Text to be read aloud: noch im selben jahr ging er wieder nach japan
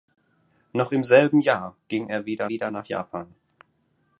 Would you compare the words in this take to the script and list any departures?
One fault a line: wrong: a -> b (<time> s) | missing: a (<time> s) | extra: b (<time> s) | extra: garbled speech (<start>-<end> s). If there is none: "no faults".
extra: wieder (2.5 s)